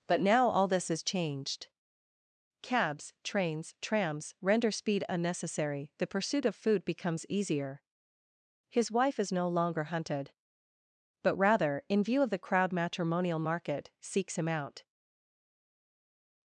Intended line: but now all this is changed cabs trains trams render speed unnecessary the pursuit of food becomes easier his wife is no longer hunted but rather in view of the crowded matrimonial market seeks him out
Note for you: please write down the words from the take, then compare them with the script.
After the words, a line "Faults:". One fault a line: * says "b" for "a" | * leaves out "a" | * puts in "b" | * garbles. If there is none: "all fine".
but now all this is changed cabs trains trams render speed unnecessary the pursuit of food becomes easier his wife is no longer hunted but rather in view of the crowd matrimonial market seeks him out
Faults:
* says "crowd" for "crowded"